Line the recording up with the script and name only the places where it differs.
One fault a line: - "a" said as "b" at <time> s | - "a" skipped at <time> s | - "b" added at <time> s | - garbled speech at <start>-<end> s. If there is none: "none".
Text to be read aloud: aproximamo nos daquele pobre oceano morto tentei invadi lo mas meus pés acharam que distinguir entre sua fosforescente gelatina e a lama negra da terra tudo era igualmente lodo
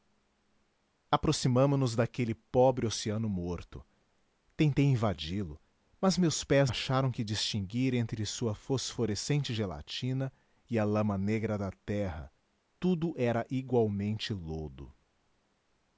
none